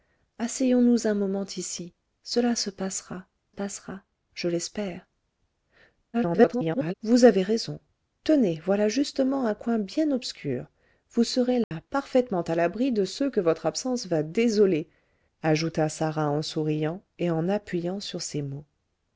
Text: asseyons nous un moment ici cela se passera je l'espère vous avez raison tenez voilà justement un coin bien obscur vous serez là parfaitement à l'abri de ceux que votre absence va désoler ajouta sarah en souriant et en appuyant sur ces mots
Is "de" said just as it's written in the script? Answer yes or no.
yes